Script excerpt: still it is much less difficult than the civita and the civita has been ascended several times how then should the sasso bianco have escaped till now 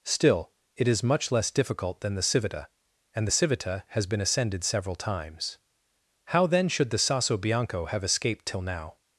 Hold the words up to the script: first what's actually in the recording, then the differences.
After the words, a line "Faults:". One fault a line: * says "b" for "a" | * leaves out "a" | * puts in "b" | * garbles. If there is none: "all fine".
still it is much less difficult than the civita and the civita has been ascended several times how then should the sasso bianco have escaped till now
Faults:
all fine